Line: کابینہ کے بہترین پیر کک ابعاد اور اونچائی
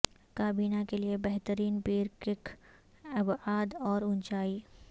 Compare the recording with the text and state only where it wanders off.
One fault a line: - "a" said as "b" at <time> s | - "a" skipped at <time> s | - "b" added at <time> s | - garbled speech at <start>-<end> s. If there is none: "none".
- "لئے" added at 1.0 s